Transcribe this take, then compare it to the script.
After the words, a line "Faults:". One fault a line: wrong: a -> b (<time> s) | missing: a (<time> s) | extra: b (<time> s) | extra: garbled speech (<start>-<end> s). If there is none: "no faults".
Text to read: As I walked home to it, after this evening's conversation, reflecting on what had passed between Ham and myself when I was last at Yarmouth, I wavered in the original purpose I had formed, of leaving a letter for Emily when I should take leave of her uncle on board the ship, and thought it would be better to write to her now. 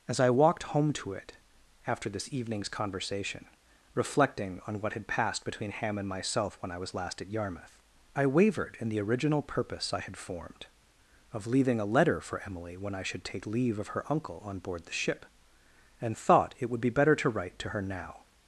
As I walked home to it, after this evening's conversation, reflecting on what had passed between Ham and myself when I was last at Yarmouth, I wavered in the original purpose I had formed, of leaving a letter for Emily when I should take leave of her uncle on board the ship, and thought it would be better to write to her now.
Faults:
no faults